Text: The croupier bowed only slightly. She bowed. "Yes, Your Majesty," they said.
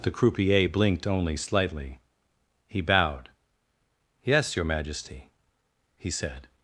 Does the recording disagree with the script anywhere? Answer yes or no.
yes